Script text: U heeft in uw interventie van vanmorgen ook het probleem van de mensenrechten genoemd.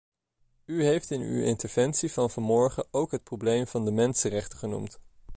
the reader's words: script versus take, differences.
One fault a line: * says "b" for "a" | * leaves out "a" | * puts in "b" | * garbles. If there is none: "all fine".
all fine